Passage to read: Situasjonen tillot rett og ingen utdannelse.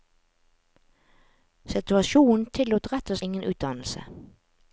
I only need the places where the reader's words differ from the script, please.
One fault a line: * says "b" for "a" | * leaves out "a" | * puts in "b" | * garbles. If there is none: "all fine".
all fine